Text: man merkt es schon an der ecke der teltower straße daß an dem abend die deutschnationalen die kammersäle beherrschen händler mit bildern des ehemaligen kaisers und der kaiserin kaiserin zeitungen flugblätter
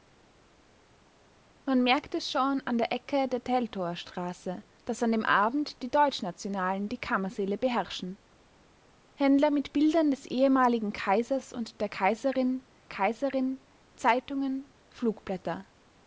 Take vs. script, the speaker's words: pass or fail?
pass